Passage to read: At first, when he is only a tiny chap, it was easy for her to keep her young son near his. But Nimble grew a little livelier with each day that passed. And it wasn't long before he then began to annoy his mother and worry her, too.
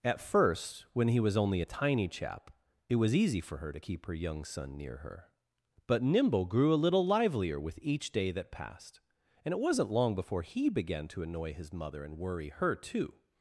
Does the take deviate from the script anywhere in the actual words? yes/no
yes